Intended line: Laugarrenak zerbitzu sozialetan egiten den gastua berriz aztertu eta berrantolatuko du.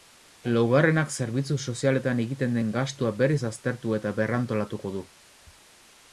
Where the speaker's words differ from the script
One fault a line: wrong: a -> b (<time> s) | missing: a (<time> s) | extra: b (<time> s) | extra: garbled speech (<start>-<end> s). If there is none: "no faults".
no faults